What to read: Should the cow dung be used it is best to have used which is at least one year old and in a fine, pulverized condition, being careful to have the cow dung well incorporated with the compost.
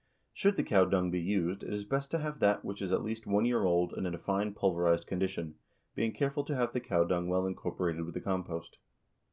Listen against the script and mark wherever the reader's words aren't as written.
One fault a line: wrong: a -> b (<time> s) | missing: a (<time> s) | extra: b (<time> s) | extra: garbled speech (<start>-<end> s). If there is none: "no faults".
wrong: used -> that (2.4 s)